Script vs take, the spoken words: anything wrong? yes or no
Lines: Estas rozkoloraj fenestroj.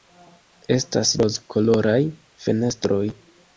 no